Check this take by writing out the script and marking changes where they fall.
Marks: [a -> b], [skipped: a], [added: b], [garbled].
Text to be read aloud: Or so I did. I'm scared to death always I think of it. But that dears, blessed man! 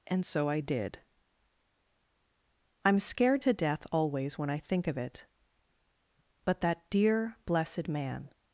[Or -> And] so I did. I'm scared to death always [added: when] I think of it. But that [dears, -> dear] blessed man!